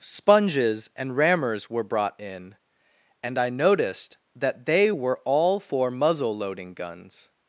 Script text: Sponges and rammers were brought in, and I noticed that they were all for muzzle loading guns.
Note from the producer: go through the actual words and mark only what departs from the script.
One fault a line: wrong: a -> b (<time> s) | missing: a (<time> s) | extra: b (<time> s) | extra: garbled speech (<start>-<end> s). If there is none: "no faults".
no faults